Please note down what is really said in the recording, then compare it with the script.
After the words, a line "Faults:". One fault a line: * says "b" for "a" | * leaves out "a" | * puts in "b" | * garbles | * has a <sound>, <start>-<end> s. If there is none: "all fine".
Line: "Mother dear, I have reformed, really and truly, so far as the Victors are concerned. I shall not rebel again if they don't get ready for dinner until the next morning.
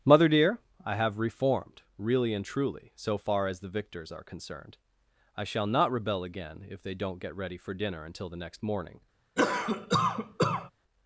"Mother dear, I have reformed, really and truly, so far as the Victors are concerned. I shall not rebel again if they don't get ready for dinner until the next morning.
Faults:
* has a cough, 9.4-10.7 s